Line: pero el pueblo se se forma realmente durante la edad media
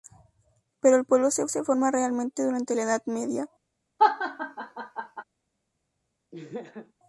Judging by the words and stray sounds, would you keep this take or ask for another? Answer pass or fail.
fail